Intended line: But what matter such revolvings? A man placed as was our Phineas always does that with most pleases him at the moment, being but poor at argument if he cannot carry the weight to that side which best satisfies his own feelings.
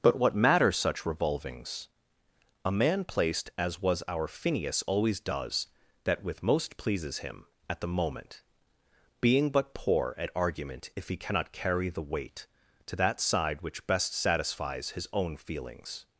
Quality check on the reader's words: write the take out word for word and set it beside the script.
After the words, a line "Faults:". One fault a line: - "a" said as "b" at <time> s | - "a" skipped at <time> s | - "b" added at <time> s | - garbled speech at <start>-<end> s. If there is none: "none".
But what matter such revolvings? A man placed as was our Phineas always does that with most pleases him at the moment, being but poor at argument if he cannot carry the weight to that side which best satisfies his own feelings.
Faults:
none